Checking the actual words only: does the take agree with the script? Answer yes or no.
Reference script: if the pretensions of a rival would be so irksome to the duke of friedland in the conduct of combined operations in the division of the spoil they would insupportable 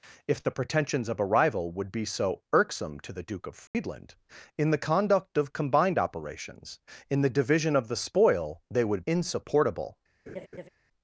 yes